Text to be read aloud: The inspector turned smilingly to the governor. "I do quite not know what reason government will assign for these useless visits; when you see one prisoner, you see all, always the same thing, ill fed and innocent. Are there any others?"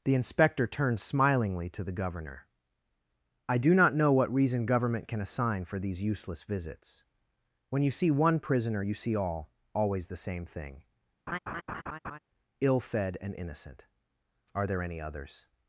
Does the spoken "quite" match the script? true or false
false